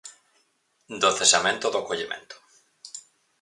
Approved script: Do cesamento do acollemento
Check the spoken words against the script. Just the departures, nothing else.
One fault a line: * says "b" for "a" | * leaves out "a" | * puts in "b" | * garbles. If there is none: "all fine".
all fine